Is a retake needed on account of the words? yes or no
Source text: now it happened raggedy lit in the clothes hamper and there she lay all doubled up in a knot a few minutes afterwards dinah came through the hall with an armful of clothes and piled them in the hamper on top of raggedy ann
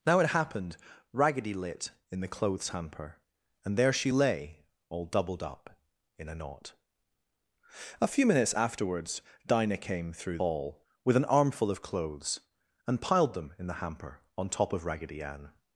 yes